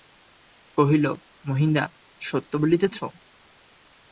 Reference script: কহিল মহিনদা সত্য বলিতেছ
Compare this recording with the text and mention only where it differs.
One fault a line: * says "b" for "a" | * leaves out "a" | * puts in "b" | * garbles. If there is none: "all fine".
all fine